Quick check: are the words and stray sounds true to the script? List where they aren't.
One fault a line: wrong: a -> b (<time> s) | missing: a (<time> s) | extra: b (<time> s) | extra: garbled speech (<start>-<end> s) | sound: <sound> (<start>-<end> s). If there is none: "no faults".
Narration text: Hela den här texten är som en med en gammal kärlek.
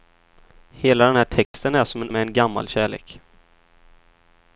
sound: dropout (1.4-1.5 s)